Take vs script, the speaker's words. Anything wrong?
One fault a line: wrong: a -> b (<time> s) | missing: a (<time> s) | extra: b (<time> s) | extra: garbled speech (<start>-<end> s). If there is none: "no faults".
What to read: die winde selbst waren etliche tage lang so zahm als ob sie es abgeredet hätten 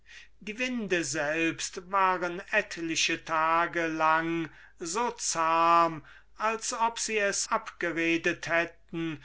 no faults